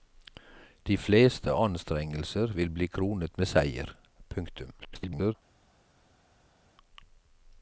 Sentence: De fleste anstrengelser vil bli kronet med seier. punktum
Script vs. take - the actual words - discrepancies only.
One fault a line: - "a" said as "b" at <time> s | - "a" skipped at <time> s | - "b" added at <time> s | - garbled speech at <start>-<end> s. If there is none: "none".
- garbled speech at 4.8-5.3 s